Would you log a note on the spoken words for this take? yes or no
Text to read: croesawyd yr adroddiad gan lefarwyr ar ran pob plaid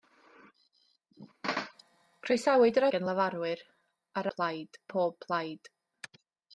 yes